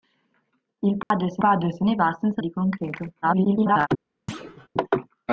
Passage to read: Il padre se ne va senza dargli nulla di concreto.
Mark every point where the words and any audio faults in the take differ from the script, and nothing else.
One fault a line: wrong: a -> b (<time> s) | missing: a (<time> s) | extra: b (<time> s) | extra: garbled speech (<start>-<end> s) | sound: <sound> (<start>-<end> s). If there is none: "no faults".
sound: dropout (1.0-1.1 s)
extra: padre se (1.4 s)
missing: dargli nulla (2.4 s)
extra: garbled speech (3.2-3.9 s)
sound: thud (4.3-4.7 s)